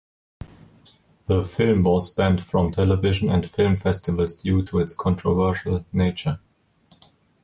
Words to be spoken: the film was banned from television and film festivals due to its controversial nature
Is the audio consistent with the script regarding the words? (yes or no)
yes